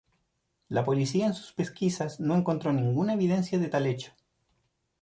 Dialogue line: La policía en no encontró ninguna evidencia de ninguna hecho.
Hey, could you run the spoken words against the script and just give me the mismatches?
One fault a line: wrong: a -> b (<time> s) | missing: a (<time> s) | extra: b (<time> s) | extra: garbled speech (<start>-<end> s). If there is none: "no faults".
extra: sus pesquisas (1.4 s)
wrong: ninguna -> tal (3.7 s)